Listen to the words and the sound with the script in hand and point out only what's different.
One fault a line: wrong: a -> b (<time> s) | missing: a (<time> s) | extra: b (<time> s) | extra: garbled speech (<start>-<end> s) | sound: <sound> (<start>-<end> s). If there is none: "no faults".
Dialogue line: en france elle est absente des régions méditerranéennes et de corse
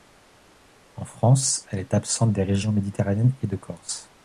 no faults